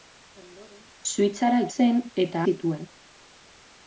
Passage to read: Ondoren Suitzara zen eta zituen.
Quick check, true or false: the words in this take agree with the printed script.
true